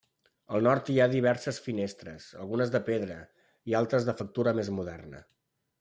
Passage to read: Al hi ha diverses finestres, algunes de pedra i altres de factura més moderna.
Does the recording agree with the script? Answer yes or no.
no